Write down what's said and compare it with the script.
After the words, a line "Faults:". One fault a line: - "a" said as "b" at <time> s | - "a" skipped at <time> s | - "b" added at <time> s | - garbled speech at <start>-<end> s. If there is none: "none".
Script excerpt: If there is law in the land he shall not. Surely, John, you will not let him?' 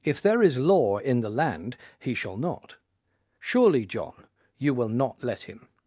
If there is law in the land he shall not. Surely, John, you will not let him?'
Faults:
none